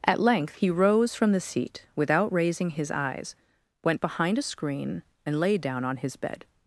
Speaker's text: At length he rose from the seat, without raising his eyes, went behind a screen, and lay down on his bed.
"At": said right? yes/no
yes